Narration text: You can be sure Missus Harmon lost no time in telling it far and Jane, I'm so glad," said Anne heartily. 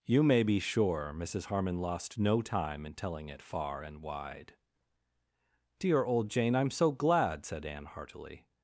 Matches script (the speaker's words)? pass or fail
fail